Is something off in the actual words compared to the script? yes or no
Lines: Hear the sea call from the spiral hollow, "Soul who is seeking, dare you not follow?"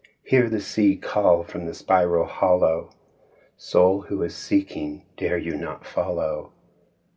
no